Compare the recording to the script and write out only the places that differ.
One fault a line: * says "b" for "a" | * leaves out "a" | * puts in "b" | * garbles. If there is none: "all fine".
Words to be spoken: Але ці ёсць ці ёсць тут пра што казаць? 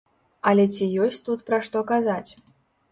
* leaves out "ці ёсць"